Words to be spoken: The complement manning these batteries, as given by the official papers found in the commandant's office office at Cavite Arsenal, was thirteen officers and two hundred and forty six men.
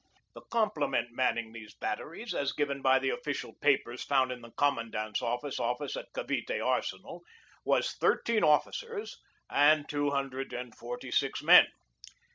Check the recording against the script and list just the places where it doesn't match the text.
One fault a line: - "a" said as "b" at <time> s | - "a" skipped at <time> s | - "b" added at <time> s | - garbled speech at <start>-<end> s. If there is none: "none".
none